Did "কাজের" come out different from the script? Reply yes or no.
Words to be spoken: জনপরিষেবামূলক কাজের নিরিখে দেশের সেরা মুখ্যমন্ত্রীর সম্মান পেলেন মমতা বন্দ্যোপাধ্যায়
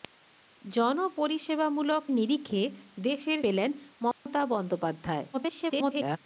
yes